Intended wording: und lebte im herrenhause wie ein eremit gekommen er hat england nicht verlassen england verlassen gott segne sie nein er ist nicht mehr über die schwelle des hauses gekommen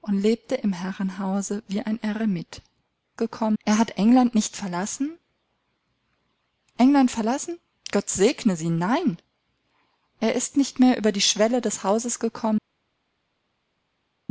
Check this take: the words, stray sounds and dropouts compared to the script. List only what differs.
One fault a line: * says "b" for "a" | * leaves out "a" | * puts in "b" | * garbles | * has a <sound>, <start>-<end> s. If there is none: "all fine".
all fine